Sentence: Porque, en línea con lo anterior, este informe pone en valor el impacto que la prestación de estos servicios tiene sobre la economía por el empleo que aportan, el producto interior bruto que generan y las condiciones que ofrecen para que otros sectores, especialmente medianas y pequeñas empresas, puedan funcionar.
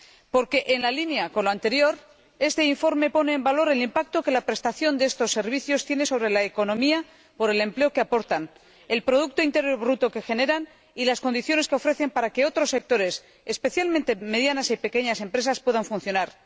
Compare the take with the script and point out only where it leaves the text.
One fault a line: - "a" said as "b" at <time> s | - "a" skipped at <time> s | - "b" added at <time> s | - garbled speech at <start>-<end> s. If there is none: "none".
none